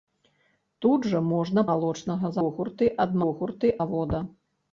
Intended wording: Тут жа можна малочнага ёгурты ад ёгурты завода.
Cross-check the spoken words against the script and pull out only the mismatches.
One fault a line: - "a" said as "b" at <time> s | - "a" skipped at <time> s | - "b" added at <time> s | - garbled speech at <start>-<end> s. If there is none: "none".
none